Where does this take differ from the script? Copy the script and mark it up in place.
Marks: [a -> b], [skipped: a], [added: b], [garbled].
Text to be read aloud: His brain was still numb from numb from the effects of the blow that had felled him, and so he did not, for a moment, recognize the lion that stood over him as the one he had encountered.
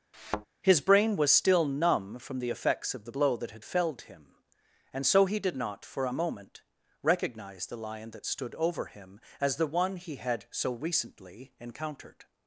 His brain was still numb from [skipped: numb from] the effects of the blow that had felled him, and so he did not, for a moment, recognize the lion that stood over him as the one he had [added: so recently] encountered.